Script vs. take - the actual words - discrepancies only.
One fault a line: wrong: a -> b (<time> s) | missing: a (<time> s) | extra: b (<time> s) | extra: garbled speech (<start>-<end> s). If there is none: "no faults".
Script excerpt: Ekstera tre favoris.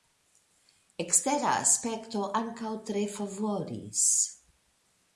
extra: aspekto ankaŭ (1.7 s)